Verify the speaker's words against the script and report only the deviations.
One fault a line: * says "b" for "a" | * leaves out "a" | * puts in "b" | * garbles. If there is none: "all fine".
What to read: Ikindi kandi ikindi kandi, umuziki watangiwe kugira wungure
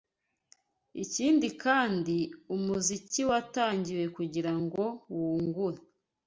* leaves out "ikindi kandi"
* puts in "ngo"